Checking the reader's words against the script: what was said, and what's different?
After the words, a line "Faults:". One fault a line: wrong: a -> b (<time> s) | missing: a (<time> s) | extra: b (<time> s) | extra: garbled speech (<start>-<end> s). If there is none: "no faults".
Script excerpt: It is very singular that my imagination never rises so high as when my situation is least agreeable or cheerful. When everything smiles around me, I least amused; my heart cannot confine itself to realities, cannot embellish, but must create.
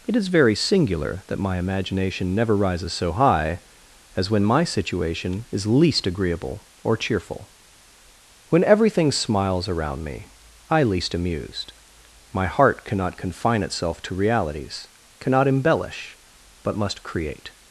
It is very singular that my imagination never rises so high as when my situation is least agreeable or cheerful. When everything smiles around me, I least amused; my heart cannot confine itself to realities, cannot embellish, but must create.
Faults:
no faults